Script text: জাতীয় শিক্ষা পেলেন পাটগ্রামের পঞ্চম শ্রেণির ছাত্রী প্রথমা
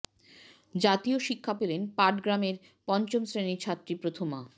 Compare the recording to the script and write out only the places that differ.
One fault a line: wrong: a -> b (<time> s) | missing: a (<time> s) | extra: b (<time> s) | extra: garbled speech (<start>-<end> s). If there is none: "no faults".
no faults